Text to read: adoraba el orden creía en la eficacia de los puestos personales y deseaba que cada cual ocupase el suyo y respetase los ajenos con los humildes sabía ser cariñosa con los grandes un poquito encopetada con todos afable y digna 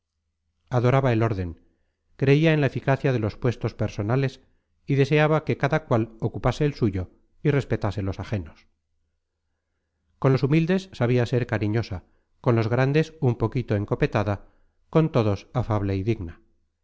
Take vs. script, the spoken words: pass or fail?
pass